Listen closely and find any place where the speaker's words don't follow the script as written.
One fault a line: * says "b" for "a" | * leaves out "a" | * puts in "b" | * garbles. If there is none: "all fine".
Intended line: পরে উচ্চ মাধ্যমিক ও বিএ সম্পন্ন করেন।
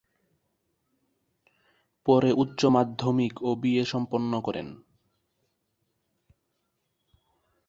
all fine